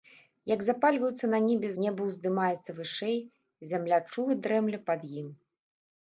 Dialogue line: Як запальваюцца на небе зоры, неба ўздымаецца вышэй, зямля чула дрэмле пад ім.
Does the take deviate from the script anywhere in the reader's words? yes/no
yes